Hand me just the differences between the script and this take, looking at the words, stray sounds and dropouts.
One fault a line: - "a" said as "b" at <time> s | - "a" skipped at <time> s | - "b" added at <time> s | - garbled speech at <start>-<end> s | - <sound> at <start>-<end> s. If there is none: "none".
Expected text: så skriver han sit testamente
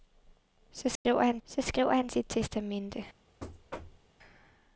- dropout at 1.0-1.1 s
- "så skriver han" added at 1.4 s
- thud at 3.4-4.1 s